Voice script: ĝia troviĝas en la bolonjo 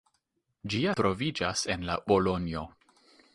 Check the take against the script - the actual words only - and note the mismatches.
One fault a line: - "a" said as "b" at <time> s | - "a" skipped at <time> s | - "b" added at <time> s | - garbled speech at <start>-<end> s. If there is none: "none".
none